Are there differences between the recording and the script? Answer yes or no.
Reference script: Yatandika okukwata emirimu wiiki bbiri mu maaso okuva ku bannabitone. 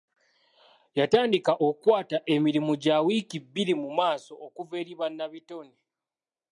yes